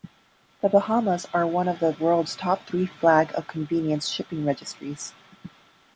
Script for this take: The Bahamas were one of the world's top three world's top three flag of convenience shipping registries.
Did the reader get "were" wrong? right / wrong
wrong